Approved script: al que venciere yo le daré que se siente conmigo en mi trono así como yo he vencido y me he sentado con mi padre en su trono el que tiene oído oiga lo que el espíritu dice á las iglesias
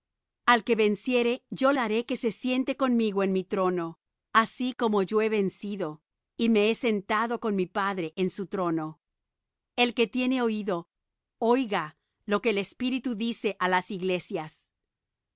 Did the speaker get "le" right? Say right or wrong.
wrong